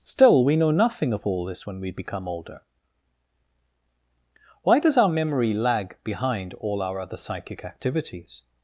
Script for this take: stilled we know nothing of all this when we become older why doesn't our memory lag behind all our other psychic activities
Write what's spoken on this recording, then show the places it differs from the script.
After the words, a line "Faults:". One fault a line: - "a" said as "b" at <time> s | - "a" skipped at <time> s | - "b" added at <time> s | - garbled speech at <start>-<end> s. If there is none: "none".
still we know nothing of all this when we become older why does our memory lag behind all our other psychic activities
Faults:
- "stilled" said as "still" at 0.0 s
- "doesn't" said as "does" at 4.8 s